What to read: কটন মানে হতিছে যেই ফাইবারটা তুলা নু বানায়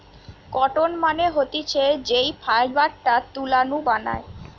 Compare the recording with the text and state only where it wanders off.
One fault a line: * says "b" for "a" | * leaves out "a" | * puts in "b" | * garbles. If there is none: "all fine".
all fine